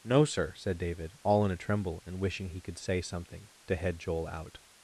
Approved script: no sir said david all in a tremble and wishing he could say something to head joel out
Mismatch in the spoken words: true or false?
false